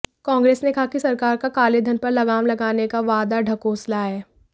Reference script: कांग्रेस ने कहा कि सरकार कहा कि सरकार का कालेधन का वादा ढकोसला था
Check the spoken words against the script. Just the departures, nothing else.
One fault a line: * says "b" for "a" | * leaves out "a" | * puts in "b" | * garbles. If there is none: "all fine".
* says "का कालेधन पर लगाम लगाने" for "कहा कि सरकार का कालेधन"
* says "है" for "था"